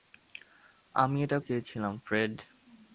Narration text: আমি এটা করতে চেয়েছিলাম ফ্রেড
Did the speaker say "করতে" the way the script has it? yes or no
no